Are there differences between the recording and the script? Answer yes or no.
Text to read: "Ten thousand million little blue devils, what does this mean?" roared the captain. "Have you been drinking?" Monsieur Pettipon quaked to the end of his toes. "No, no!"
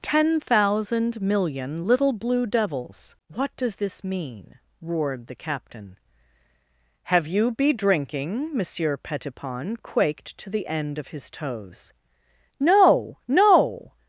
yes